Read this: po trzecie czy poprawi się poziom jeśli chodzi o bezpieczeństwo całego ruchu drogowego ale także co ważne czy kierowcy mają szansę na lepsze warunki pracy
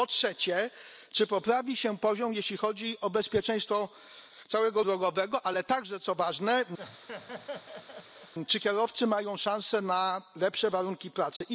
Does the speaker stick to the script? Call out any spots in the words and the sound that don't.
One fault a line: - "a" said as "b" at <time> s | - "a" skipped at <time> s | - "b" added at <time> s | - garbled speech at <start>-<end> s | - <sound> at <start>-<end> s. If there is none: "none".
- "ruchu" skipped at 4.8 s
- laugh at 6.8-8.3 s
- dropout at 11.4-11.4 s